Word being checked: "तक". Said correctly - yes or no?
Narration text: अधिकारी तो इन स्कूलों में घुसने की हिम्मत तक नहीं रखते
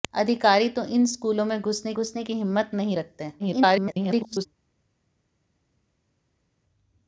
no